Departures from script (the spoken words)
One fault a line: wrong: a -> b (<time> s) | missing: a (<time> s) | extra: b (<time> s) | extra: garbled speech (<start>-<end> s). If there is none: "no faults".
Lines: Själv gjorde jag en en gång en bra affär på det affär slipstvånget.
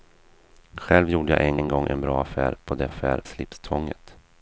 no faults